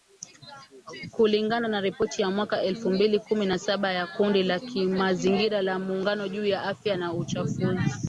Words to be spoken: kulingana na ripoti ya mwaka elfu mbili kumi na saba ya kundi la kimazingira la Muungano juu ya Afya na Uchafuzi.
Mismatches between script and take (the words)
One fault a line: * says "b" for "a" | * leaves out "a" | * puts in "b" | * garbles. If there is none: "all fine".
all fine